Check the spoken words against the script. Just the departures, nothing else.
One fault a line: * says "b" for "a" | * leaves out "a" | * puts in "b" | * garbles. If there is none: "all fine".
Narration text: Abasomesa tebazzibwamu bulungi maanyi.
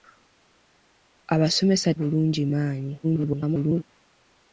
* leaves out "tebazzibwamu"
* garbles